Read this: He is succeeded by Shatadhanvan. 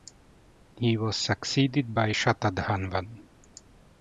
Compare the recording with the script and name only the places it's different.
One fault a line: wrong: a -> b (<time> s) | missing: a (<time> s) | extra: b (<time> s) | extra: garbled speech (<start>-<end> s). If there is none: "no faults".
wrong: is -> was (1.0 s)